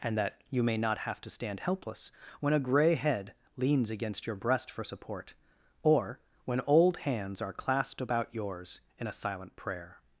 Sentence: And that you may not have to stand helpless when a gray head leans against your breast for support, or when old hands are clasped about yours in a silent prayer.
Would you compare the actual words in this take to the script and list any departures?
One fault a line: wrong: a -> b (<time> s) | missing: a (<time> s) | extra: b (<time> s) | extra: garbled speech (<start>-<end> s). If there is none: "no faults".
no faults